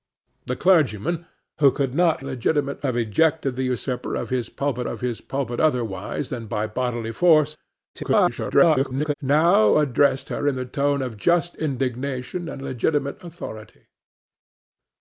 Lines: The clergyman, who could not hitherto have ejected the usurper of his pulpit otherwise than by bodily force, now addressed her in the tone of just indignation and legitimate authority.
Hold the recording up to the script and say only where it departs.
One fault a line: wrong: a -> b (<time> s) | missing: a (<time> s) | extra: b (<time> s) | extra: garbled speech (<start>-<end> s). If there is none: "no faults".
wrong: hitherto -> legitimate (2.2 s)
extra: of his pulpit (4.8 s)
extra: garbled speech (7.9-9.1 s)